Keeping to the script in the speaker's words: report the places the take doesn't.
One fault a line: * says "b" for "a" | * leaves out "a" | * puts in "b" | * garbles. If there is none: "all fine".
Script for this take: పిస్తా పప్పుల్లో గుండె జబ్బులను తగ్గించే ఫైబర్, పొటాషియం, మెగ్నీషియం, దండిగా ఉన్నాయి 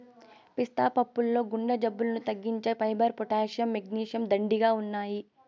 all fine